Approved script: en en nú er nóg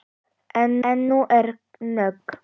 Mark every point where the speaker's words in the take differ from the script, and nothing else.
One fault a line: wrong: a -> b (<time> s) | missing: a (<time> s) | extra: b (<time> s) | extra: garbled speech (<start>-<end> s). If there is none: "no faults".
no faults